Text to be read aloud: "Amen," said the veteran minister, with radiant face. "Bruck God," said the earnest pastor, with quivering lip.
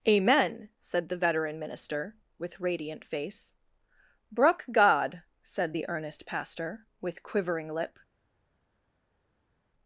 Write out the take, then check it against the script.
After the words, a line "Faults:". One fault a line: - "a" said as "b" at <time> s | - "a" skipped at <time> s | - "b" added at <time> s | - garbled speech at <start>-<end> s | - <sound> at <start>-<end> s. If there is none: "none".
"Amen," said the veteran minister, with radiant face. "Bruck God," said the earnest pastor, with quivering lip.
Faults:
none